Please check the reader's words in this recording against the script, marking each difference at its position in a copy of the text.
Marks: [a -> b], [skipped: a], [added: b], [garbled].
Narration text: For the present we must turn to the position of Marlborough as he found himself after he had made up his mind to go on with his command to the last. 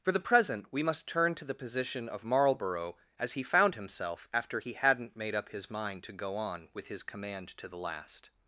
For the present we must turn to the position of Marlborough as he found himself after he [had -> hadn't] made up his mind to go on with his command to the last.